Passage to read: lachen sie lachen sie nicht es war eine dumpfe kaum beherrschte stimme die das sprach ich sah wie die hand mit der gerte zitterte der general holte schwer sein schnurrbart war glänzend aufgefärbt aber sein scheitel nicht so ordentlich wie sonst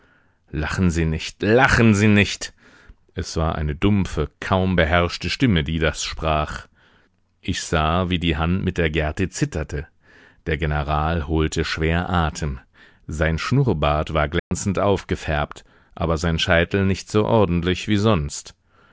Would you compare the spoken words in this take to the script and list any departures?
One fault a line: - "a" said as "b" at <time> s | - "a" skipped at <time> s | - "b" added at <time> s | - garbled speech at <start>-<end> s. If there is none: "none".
- "nicht" added at 1.1 s
- "atem" added at 12.1 s